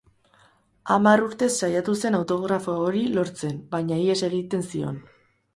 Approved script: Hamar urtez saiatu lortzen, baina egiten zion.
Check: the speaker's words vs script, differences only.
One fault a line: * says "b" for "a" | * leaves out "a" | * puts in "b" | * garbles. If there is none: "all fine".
* puts in "zen autografo hori"
* puts in "ihes"